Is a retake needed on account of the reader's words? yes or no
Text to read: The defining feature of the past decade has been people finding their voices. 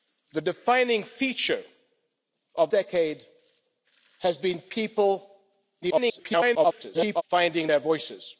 yes